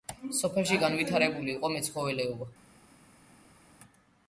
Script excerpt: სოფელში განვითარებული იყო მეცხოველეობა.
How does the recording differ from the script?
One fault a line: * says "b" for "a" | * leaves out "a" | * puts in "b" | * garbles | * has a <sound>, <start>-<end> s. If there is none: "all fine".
all fine